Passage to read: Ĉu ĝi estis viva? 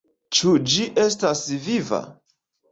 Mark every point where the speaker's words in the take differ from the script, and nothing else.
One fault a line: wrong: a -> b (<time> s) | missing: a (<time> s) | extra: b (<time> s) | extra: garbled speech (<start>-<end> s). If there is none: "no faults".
wrong: estis -> estas (1.0 s)